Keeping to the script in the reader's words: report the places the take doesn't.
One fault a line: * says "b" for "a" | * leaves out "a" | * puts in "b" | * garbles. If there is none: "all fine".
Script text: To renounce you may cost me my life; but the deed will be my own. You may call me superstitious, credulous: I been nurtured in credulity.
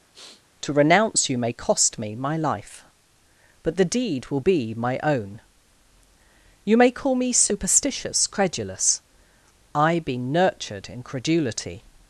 all fine